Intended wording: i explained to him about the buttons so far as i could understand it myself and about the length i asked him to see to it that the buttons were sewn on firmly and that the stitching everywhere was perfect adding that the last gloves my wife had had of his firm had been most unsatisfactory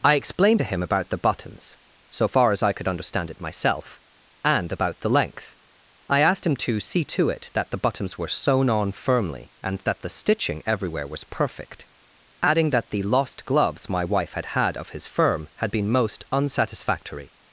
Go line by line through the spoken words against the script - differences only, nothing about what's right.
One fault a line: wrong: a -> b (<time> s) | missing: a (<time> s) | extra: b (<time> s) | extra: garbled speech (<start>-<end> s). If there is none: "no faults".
wrong: last -> lost (13.0 s)